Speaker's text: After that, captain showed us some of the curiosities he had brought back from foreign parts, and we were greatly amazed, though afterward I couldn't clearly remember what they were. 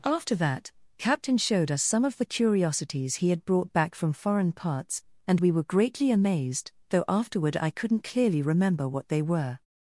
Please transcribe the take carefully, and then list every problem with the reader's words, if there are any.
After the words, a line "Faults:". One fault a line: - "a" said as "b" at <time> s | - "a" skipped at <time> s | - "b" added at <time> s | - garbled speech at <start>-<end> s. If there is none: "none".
After that, captain showed us some of the curiosities he had brought back from foreign parts, and we were greatly amazed, though afterward I couldn't clearly remember what they were.
Faults:
none